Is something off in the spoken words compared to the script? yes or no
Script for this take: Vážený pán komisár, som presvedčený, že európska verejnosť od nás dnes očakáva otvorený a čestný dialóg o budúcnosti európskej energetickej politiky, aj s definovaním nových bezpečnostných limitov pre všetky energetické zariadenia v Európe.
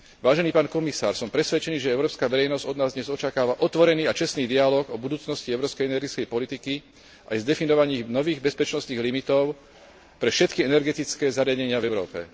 no